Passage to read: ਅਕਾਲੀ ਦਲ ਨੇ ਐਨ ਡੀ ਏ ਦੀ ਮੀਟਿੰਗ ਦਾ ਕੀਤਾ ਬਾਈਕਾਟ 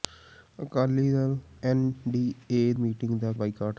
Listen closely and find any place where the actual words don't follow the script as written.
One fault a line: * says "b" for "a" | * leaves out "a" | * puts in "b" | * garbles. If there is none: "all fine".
* leaves out "ਨੇ"
* leaves out "ਦੀ"
* leaves out "ਕੀਤਾ"